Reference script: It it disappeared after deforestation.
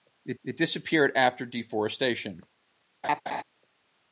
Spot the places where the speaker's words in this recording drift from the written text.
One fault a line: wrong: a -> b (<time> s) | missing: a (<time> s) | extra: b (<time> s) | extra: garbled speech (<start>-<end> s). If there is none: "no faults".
no faults